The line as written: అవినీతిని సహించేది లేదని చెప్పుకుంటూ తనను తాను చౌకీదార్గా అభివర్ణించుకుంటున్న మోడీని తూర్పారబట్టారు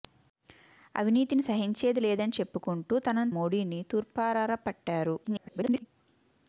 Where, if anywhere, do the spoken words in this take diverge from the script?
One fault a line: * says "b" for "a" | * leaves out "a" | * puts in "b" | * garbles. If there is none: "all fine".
* leaves out "తాను చౌకీదార్గా అభివర్ణించుకుంటున్న"
* garbles